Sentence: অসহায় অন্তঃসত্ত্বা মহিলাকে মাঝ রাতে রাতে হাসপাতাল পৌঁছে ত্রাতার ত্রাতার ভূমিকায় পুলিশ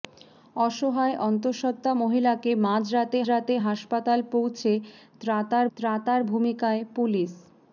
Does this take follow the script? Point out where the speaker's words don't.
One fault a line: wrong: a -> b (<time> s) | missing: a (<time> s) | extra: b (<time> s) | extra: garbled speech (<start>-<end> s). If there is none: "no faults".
no faults